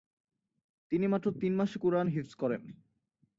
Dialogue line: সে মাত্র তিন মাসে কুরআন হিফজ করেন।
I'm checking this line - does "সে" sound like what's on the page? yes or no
no